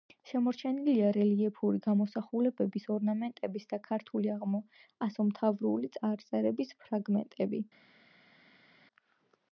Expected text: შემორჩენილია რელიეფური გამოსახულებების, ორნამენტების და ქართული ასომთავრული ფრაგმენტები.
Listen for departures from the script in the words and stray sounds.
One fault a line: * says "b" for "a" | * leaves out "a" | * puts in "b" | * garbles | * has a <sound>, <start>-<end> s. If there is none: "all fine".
* puts in "წარწერების"